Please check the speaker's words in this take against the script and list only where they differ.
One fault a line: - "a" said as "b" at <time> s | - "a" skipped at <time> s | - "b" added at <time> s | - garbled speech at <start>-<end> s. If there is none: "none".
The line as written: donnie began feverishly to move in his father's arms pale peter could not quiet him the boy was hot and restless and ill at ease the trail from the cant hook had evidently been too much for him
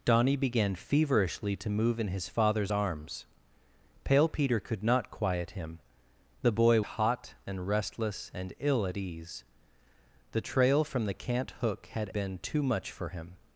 - "was" skipped at 6.8 s
- "evidently" skipped at 12.1 s